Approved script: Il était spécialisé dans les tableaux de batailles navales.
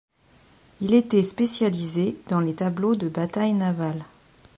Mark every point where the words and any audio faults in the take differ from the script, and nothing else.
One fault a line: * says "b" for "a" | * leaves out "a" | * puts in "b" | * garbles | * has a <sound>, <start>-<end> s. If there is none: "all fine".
all fine